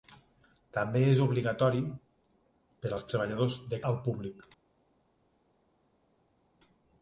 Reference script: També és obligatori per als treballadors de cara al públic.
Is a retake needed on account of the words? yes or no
yes